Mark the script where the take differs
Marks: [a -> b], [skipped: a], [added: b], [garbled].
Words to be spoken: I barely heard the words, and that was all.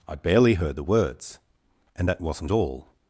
I barely heard the words, and that [was -> wasn't] all.